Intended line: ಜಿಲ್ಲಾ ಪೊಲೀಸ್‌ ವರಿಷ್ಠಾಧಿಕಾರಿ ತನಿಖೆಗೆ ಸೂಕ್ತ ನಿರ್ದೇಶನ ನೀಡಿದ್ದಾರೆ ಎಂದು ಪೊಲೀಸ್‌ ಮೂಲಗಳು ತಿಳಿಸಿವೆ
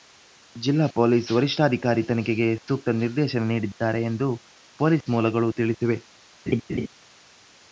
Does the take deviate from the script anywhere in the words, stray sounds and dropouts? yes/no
yes